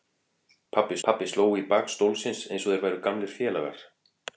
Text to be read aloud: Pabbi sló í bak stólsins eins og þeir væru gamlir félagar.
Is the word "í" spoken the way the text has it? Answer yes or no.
yes